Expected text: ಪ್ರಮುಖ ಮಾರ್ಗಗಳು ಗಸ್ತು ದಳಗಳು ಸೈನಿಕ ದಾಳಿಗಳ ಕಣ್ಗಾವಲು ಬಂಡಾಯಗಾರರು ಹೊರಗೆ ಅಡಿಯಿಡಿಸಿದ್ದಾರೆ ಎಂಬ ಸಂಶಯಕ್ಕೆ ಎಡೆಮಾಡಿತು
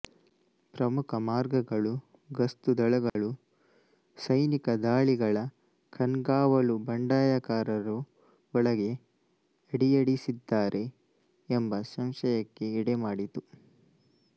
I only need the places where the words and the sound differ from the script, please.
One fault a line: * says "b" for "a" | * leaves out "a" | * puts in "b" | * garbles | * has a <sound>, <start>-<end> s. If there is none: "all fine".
* has a dropout, 3.1-3.2 s
* says "ಒಳಗೆ" for "ಹೊರಗೆ"